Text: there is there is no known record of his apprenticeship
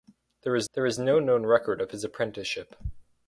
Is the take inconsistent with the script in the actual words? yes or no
no